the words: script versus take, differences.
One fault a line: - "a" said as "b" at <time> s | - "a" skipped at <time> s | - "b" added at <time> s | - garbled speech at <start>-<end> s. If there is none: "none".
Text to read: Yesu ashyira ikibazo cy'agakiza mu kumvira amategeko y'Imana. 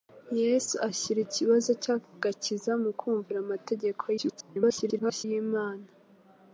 - garbled speech at 4.2-5.2 s